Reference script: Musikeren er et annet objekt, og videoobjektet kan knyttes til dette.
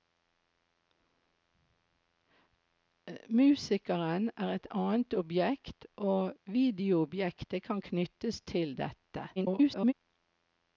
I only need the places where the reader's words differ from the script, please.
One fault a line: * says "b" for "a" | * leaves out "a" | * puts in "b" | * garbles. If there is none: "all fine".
* garbles